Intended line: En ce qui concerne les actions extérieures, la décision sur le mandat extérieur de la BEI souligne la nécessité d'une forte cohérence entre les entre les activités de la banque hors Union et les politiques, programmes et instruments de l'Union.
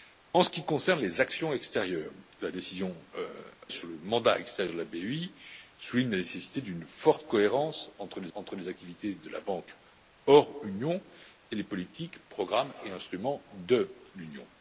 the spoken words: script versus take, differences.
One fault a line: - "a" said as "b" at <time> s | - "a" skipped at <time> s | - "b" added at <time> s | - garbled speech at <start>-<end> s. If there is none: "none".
none